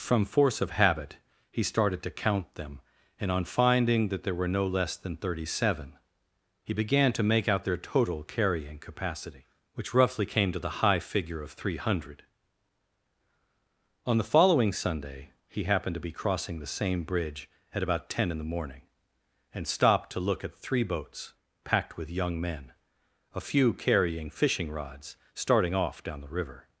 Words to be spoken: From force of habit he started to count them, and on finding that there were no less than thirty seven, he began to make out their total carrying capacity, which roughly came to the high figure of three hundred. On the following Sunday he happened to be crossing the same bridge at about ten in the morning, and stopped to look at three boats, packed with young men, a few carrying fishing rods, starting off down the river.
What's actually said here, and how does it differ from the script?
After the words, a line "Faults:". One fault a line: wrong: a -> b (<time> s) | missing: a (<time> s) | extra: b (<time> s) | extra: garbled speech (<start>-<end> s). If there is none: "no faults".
From force of habit he started to count them, and on finding that there were no less than thirty seven, he began to make out their total carrying capacity, which roughly came to the high figure of three hundred. On the following Sunday he happened to be crossing the same bridge at about ten in the morning, and stopped to look at three boats, packed with young men, a few carrying fishing rods, starting off down the river.
Faults:
no faults